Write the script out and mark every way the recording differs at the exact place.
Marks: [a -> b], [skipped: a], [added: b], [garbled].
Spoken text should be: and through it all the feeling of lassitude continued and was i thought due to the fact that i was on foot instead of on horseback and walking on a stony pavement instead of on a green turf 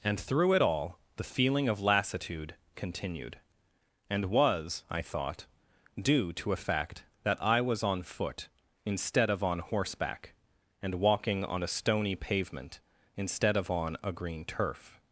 and through it all the feeling of lassitude continued and was i thought due to [the -> a] fact that i was on foot instead of on horseback and walking on a stony pavement instead of on a green turf